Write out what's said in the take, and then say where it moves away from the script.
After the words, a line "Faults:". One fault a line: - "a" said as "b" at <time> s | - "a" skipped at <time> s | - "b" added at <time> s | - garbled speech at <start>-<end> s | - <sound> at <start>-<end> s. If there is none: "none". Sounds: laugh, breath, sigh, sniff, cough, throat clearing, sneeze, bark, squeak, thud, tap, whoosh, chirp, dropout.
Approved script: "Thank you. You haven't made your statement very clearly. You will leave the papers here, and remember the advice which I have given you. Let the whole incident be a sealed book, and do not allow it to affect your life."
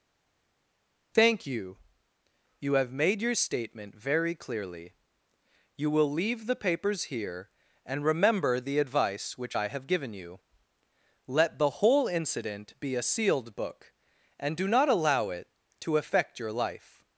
"Thank you. You have made your statement very clearly. You will leave the papers here, and remember the advice which I have given you. Let the whole incident be a sealed book, and do not allow it to affect your life."
Faults:
- "haven't" said as "have" at 2.7 s